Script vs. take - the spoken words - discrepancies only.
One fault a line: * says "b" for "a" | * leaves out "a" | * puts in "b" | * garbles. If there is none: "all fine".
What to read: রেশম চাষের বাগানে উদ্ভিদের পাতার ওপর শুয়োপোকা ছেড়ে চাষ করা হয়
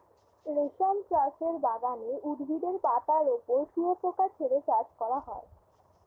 all fine